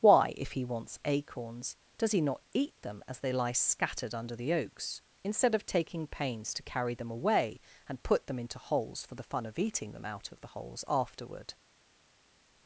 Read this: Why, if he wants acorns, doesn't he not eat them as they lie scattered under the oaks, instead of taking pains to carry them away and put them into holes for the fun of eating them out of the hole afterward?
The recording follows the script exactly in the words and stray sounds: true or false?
false